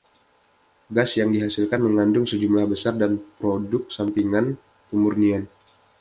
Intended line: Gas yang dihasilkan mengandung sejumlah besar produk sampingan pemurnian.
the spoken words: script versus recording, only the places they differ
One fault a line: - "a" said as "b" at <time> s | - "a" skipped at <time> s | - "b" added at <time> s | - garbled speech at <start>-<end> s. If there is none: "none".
none